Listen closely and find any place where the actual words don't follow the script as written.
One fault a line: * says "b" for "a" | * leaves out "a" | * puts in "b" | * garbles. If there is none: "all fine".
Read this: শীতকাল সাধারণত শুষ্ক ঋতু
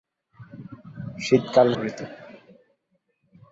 * leaves out "সাধারণত শুষ্ক"